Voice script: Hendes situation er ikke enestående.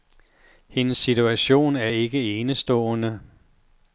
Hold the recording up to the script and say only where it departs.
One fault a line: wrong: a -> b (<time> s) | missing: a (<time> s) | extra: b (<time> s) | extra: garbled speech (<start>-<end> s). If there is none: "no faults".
no faults